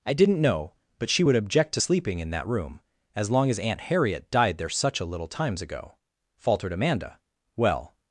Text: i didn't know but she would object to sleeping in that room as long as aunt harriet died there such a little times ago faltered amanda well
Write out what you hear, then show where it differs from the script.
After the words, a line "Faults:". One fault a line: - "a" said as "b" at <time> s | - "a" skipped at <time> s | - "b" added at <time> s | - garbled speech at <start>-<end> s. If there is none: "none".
i didn't know but she would object to sleeping in that room as long as aunt harriet died there such a little times ago faltered amanda well
Faults:
none